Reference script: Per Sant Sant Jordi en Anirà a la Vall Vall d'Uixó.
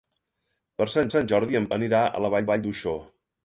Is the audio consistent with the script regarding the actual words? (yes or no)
yes